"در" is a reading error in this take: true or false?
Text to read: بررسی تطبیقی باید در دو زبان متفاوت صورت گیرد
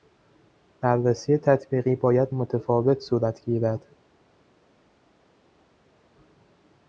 true